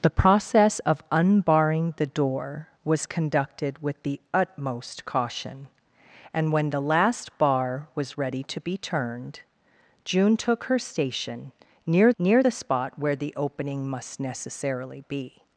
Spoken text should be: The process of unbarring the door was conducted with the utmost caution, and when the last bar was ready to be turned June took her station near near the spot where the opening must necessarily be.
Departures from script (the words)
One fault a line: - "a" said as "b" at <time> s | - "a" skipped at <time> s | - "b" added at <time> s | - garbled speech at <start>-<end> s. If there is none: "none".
none